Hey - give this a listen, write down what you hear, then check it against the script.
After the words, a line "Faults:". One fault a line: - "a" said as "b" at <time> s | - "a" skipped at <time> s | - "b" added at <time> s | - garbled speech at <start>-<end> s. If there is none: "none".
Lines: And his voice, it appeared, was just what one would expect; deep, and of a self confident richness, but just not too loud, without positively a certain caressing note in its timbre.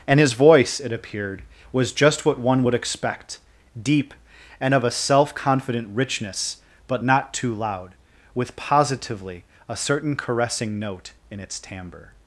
And his voice, it appeared, was just what one would expect; deep, and of a self confident richness, but not too loud, with positively a certain caressing note in its timbre.
Faults:
- "just" skipped at 7.0 s
- "without" said as "with" at 8.3 s